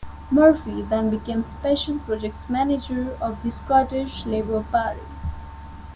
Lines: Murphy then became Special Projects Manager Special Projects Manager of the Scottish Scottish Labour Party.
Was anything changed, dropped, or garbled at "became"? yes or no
no